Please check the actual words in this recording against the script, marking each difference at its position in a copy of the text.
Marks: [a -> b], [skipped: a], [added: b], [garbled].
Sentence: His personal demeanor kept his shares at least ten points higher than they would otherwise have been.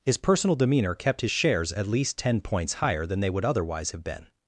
His personal demeanor kept his shares at least ten points higher than they would otherwise have been.